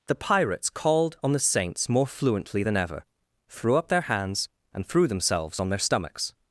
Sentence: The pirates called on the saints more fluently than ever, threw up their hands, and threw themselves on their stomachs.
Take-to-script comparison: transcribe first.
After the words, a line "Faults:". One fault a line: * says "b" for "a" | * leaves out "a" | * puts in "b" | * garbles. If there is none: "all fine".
The pirates called on the saints more fluently than ever, threw up their hands, and threw themselves on their stomachs.
Faults:
all fine